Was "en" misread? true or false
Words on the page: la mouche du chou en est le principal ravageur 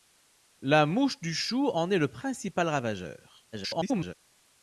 false